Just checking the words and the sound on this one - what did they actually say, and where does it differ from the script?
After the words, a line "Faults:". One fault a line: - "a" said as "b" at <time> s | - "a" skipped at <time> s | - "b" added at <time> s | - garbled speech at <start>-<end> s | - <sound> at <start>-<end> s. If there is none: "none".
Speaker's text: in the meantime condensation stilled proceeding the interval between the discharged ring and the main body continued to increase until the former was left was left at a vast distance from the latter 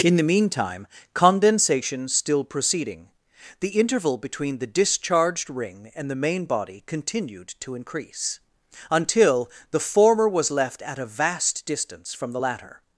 in the meantime condensation still proceeding the interval between the discharged ring and the main body continued to increase until the former was left at a vast distance from the latter
Faults:
- "stilled" said as "still" at 2.1 s
- "was left" skipped at 10.8 s